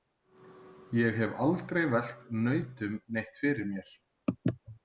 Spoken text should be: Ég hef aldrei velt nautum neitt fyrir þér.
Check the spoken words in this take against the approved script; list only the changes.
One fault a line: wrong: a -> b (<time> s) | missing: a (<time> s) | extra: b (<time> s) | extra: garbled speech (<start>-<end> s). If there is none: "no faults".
wrong: þér -> mér (3.8 s)